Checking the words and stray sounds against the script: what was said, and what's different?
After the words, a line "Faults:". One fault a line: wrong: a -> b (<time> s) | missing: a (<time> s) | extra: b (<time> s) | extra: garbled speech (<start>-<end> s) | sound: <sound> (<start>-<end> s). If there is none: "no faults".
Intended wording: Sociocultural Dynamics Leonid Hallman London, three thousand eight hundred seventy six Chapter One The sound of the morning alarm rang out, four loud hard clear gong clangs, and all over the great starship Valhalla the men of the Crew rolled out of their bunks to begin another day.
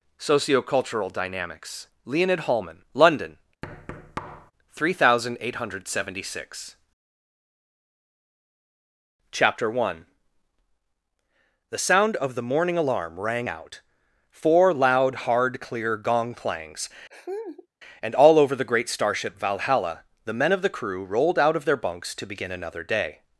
Sociocultural Dynamics Leonid Hallman London, three thousand eight hundred seventy six Chapter One The sound of the morning alarm rang out, four loud hard clear gong clangs, and all over the great starship Valhalla the men of the Crew rolled out of their bunks to begin another day.
Faults:
sound: thud (3.6-4.5 s)
sound: laugh (17.1-17.7 s)